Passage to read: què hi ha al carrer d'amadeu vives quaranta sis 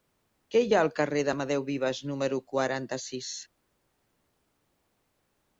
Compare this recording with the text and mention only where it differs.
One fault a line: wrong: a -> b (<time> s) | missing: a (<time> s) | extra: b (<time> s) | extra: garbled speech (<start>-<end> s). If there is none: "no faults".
extra: número (2.1 s)